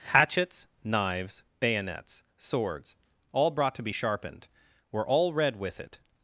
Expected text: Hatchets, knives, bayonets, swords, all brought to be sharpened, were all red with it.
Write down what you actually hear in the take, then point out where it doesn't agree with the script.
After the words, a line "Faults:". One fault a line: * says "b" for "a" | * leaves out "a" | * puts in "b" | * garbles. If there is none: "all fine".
Hatchets, knives, bayonets, swords, all brought to be sharpened, were all red with it.
Faults:
all fine